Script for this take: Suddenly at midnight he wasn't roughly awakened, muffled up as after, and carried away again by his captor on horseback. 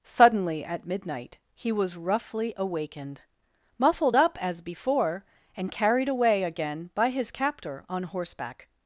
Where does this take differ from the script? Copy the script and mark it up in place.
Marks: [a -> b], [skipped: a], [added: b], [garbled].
Suddenly at midnight he [wasn't -> was] roughly awakened, muffled up as [after, -> before] and carried away again by his captor on horseback.